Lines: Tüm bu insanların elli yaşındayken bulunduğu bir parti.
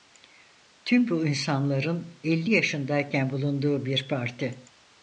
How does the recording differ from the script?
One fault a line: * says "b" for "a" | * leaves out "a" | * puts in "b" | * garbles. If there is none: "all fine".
all fine